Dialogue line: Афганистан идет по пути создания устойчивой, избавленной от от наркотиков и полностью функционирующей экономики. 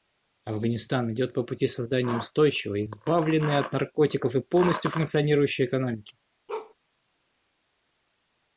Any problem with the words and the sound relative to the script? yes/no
yes